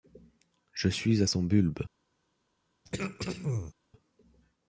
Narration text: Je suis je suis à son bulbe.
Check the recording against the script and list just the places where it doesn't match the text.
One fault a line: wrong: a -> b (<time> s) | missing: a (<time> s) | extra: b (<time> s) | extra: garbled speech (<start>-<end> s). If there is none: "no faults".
missing: je suis (1.2 s)